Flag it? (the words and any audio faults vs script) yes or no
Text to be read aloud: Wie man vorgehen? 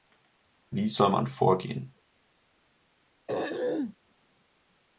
yes